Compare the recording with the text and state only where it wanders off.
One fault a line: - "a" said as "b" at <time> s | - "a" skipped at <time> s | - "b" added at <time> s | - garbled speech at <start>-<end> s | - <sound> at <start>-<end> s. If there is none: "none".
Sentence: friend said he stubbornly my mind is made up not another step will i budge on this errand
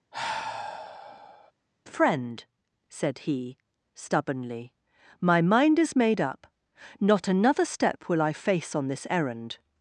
- sigh at 0.1-1.5 s
- "budge" said as "face" at 8.3 s